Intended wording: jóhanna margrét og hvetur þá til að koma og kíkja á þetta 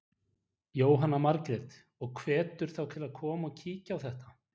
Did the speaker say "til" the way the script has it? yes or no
yes